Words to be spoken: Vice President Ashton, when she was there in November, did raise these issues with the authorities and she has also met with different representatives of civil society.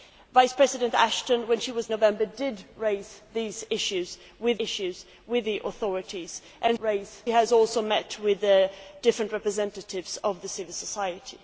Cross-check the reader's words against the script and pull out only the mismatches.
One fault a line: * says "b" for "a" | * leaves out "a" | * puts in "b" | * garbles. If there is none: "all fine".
* leaves out "there in"
* puts in "issues with"
* says "raise" for "she"